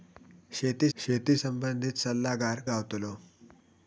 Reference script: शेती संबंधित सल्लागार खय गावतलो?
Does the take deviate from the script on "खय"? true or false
true